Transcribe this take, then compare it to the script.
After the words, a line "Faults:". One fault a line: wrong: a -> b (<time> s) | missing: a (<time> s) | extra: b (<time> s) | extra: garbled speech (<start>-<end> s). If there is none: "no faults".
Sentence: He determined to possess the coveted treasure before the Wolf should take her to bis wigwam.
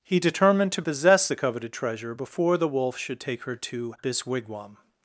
He determined to possess the coveted treasure before the Wolf should take her to this wigwam.
Faults:
wrong: bis -> this (4.0 s)